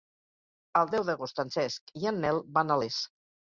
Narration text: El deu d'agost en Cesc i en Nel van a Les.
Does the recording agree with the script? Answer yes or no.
yes